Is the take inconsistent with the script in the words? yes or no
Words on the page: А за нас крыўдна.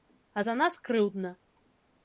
no